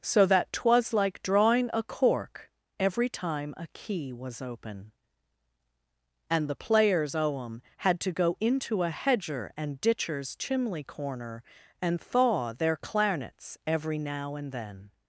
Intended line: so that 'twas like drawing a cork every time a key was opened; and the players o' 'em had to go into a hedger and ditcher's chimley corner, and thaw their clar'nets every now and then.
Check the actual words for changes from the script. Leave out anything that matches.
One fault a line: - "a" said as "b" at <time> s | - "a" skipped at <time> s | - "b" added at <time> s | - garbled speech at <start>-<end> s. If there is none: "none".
- "opened" said as "open" at 4.4 s